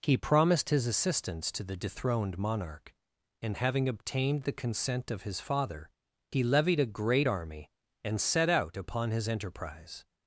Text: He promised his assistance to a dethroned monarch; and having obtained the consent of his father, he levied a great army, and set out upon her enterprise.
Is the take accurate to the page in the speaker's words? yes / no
no